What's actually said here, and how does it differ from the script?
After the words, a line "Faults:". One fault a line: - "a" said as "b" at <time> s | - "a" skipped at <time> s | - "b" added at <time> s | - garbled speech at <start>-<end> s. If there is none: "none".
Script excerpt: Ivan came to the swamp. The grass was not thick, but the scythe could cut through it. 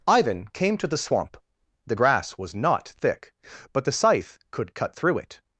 Ivan came to the swamp. The grass was not thick, but the scythe could cut through it.
Faults:
none